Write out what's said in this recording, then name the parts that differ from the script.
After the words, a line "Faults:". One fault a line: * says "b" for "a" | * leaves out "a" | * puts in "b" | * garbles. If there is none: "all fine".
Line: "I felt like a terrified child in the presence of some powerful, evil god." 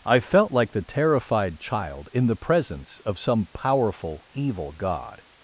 "I felt like the terrified child in the presence of some powerful, evil god."
Faults:
* says "the" for "a"